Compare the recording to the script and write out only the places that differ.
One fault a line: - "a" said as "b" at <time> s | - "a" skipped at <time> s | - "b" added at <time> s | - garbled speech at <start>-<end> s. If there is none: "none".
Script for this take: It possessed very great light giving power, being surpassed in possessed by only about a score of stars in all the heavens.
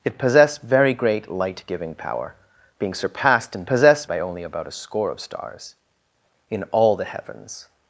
none